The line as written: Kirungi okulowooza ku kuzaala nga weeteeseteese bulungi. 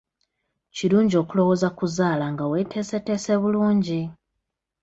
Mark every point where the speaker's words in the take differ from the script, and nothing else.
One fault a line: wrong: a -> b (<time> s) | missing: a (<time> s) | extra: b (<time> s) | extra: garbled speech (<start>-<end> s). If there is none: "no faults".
no faults